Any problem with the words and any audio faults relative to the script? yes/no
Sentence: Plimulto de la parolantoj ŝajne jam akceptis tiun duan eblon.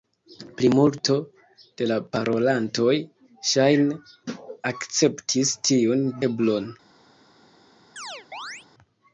yes